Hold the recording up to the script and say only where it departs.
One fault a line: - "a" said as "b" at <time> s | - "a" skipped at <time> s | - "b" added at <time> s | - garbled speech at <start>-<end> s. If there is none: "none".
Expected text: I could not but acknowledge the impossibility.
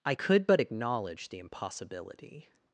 - "not" skipped at 0.5 s